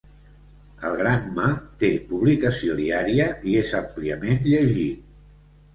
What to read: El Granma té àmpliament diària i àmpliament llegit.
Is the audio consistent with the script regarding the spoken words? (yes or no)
no